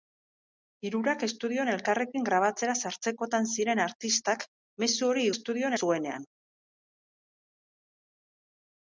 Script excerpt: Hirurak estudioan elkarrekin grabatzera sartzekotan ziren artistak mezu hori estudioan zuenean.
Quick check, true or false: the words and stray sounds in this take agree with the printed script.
true